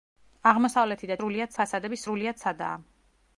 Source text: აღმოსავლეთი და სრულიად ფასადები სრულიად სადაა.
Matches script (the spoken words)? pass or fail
pass